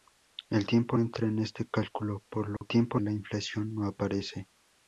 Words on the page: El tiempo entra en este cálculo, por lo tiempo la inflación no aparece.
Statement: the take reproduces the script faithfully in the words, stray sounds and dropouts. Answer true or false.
false